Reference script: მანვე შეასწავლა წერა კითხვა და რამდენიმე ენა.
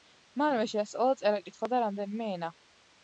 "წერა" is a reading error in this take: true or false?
false